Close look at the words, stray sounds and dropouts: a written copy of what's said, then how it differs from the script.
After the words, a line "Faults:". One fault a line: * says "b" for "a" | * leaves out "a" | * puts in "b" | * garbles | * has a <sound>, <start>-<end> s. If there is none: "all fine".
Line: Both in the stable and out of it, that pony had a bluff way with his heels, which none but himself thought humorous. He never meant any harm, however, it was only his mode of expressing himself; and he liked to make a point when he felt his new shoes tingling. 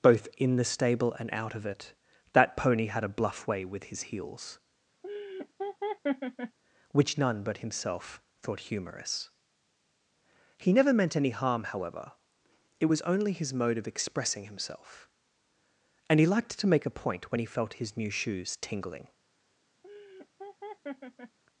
Both in the stable and out of it, that pony had a bluff way with his heels, which none but himself thought humorous. He never meant any harm, however, it was only his mode of expressing himself; and he liked to make a point when he felt his new shoes tingling.
Faults:
* has a laugh, 5.0-6.6 s
* has a laugh, 19.8-21.4 s